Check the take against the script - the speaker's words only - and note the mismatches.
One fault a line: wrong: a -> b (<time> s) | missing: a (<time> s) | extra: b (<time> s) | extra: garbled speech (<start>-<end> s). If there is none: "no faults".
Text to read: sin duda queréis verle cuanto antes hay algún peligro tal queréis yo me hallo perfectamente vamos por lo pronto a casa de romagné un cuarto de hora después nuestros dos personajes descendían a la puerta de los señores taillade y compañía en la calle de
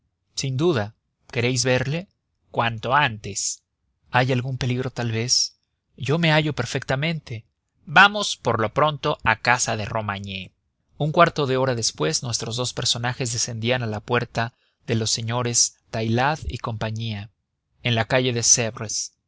wrong: queréis -> vez (5.1 s)